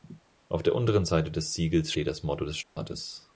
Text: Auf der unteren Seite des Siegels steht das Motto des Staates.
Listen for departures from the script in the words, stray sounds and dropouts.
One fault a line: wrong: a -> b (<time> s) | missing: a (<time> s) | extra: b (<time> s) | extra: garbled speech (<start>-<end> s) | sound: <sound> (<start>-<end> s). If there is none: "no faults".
sound: dropout (2.6-2.8 s)